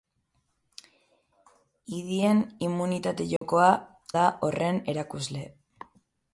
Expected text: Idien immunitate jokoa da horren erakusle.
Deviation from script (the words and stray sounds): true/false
true